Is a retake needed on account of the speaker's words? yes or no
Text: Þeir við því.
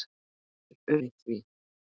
no